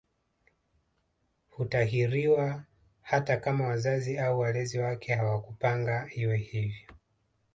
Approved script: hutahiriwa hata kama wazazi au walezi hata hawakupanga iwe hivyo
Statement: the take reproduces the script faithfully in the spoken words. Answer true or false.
false